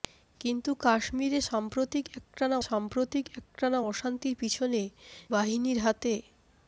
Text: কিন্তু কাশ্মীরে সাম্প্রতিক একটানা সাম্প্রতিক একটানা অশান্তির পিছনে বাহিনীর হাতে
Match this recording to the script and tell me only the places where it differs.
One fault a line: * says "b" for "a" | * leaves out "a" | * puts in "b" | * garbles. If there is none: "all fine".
all fine